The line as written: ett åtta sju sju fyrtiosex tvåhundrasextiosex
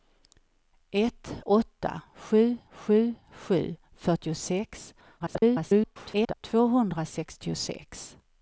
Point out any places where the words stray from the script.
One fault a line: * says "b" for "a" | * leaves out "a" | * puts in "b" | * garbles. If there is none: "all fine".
* puts in "sju"
* garbles